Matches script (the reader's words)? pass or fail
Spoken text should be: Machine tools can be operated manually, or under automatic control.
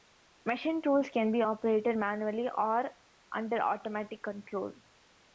pass